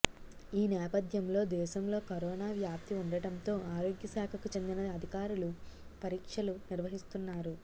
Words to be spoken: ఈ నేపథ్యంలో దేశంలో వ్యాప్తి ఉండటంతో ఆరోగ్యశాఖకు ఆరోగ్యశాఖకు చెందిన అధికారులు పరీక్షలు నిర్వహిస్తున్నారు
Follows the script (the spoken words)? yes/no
no